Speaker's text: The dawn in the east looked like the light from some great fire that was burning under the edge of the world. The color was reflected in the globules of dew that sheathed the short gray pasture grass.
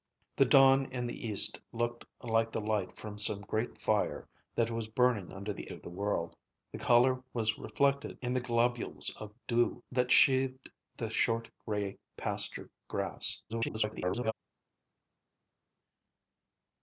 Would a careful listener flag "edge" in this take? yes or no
yes